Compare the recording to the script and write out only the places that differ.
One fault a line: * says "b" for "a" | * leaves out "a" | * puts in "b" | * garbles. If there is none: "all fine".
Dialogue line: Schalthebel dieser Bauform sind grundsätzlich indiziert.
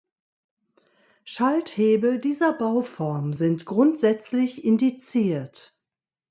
all fine